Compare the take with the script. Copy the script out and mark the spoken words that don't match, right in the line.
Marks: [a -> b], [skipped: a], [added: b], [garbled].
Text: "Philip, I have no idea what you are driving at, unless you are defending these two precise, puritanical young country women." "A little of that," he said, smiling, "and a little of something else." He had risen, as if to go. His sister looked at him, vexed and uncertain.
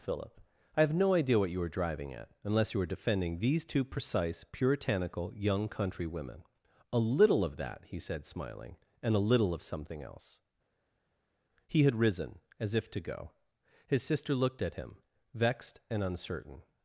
"Philip, I have no idea what you [are -> were] driving at, unless you [are -> were] defending these two precise, puritanical young country women." "A little of that," he said, smiling, "and a little of something else." He had risen, as if to go. His sister looked at him, vexed and uncertain.